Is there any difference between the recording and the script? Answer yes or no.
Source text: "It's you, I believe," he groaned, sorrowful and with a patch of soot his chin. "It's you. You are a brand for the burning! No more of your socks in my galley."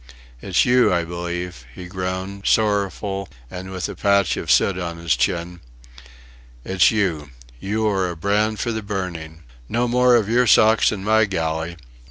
yes